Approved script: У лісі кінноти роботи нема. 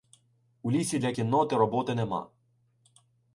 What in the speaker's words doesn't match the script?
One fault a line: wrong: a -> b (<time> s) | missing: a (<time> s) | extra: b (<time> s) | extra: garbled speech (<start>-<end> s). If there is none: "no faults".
extra: для (1.0 s)